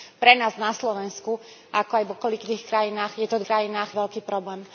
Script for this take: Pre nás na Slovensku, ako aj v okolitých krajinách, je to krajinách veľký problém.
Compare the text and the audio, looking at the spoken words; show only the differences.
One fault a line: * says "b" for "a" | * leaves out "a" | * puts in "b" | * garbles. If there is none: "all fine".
all fine